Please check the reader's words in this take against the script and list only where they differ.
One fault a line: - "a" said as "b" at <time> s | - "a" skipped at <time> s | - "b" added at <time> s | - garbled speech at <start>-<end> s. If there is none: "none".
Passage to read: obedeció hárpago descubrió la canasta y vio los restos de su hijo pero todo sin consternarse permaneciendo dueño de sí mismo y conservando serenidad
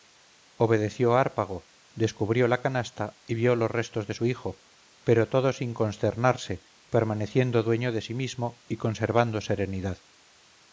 none